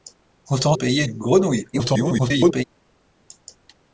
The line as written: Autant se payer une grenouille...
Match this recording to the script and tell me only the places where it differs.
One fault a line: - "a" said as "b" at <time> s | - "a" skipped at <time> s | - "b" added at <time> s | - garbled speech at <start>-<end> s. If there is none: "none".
- "se" skipped at 0.8 s
- garbled speech at 1.7-2.6 s